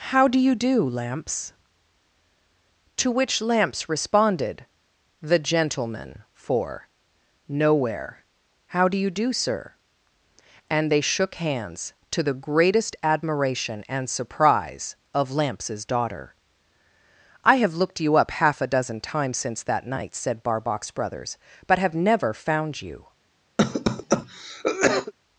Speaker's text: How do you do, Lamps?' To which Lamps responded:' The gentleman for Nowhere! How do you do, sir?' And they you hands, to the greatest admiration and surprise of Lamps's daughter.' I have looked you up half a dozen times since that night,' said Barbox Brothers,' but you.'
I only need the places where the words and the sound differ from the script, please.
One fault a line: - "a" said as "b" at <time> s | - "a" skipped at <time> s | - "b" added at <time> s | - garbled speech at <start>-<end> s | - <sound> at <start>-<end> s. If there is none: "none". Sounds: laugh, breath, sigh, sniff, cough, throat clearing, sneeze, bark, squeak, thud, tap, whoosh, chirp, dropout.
- "you" said as "shook" at 11.0 s
- "have never found" added at 21.8 s
- cough at 23.6-25.1 s